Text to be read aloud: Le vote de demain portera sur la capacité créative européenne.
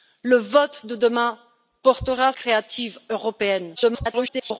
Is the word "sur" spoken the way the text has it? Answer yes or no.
no